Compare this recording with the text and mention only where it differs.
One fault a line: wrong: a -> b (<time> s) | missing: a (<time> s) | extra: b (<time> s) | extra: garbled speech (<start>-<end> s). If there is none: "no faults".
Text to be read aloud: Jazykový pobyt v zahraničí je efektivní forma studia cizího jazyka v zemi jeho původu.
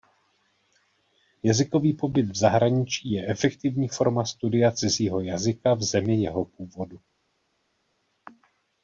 no faults